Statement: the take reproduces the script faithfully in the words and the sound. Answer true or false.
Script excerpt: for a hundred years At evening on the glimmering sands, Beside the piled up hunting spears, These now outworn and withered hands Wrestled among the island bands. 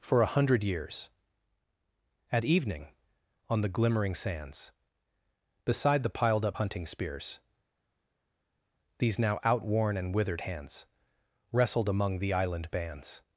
true